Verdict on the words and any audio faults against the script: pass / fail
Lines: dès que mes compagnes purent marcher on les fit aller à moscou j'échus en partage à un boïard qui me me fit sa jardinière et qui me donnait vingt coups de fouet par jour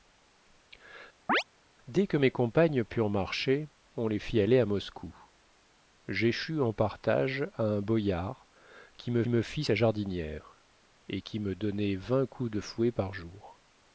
fail